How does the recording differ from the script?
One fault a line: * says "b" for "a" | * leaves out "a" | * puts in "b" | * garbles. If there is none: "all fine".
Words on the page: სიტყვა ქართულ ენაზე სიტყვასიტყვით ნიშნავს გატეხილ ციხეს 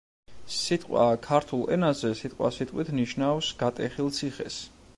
all fine